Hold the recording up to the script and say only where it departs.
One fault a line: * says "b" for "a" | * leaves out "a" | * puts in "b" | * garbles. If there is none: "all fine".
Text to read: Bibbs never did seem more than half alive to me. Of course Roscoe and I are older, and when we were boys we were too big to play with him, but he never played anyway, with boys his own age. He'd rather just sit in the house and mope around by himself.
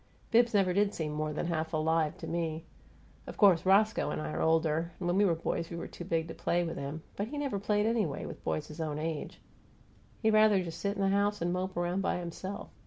all fine